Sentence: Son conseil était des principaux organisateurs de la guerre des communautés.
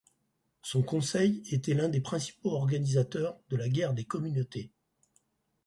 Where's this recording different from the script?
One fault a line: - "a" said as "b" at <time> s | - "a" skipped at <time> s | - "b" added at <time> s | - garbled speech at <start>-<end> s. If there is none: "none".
- "l'un" added at 1.8 s